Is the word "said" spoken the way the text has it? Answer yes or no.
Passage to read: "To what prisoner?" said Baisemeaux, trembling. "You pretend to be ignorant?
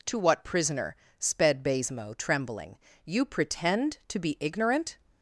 no